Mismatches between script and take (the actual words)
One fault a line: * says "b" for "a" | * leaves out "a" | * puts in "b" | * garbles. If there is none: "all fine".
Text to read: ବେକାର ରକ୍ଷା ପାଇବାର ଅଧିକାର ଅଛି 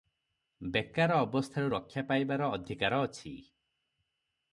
* puts in "ଅବସ୍ଥାରୁ"